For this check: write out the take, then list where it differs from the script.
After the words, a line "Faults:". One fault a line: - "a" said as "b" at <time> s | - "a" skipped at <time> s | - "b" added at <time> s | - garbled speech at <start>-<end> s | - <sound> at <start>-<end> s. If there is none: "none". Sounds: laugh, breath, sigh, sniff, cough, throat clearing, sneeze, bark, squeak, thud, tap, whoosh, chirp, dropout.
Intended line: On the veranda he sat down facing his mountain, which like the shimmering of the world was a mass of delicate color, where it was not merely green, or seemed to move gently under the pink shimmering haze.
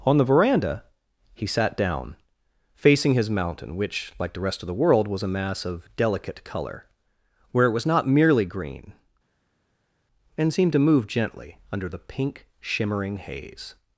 On the veranda he sat down facing his mountain, which like the rest of the world was a mass of delicate color, where it was not merely green, and seemed to move gently under the pink shimmering haze.
Faults:
- "shimmering" said as "rest" at 4.4 s
- "or" said as "and" at 10.4 s